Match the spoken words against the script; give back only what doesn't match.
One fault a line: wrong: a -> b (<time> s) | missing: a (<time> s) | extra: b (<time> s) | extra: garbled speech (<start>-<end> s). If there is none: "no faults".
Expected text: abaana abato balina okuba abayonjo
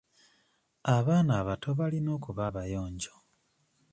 no faults